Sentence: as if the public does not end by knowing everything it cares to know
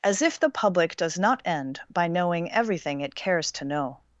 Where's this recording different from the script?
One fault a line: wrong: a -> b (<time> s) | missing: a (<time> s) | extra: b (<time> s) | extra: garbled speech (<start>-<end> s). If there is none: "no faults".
no faults